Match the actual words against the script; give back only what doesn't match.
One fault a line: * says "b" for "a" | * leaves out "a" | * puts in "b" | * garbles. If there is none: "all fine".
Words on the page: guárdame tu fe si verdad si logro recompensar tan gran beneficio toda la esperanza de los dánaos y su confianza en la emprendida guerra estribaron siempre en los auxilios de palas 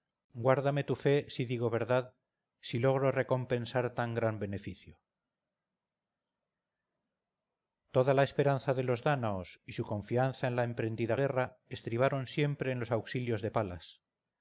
* puts in "digo"